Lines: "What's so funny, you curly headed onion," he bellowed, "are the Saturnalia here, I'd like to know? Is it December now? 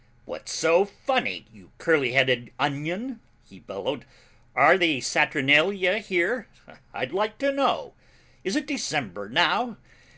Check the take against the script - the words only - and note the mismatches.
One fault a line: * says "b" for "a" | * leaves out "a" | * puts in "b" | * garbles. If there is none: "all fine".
all fine